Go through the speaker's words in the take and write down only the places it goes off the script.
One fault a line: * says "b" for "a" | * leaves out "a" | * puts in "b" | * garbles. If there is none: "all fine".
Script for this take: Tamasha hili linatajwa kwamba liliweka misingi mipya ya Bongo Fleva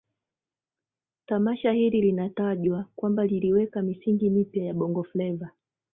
all fine